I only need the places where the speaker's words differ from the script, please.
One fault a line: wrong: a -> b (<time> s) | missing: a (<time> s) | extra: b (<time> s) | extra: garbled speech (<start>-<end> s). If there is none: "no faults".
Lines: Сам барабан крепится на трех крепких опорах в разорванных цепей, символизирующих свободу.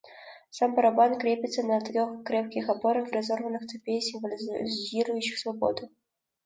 no faults